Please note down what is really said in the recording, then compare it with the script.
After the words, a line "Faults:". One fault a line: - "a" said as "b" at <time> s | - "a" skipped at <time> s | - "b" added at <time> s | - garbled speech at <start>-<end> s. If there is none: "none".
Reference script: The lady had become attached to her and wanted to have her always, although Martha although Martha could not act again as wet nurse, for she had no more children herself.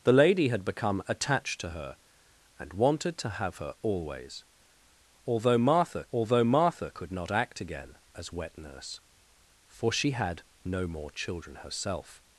The lady had become attached to her and wanted to have her always, although Martha although Martha could not act again as wet nurse, for she had no more children herself.
Faults:
none